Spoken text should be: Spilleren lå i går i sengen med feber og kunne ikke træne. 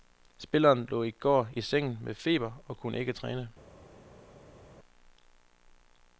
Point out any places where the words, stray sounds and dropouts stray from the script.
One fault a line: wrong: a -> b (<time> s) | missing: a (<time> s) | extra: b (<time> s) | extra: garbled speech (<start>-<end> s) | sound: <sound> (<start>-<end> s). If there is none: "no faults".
no faults